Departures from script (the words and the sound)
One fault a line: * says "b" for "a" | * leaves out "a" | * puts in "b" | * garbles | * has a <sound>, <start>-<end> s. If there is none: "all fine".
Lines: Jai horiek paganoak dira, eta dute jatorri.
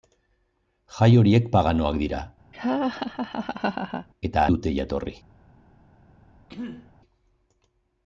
* has a laugh, 2.5-4.1 s
* has a throat clearing, 6.5-6.9 s